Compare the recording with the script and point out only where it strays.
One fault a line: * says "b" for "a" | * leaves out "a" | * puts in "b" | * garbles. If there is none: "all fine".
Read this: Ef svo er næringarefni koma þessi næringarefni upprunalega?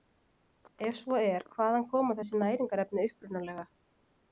* says "hvaðan" for "næringarefni"